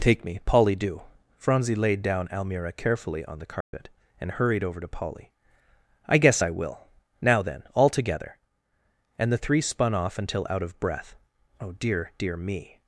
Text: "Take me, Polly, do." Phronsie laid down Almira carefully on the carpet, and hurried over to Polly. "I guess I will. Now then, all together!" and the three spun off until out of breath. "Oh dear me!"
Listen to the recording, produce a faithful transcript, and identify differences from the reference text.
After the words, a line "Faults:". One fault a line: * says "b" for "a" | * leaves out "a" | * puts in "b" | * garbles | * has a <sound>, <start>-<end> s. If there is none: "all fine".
"Take me, Polly, do." Phronsie laid down Almira carefully on the carpet, and hurried over to Polly. "I guess I will. Now then, all together!" and the three spun off until out of breath. "Oh dear dear me!"
Faults:
* has a dropout, 3.6-3.7 s
* puts in "dear"